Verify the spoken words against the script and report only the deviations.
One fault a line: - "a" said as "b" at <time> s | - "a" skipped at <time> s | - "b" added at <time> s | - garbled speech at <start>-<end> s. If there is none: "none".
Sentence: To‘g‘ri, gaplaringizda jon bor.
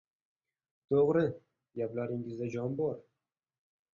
none